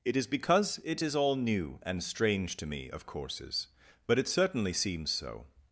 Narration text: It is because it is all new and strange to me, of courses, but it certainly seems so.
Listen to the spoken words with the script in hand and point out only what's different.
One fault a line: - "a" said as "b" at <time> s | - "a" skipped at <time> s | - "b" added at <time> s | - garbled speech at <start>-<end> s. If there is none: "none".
none